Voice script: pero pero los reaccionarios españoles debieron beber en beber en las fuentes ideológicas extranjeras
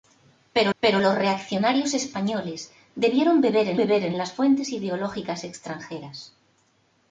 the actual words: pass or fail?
pass